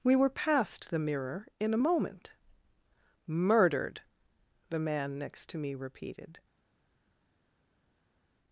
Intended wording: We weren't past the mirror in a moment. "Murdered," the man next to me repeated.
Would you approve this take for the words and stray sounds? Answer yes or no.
no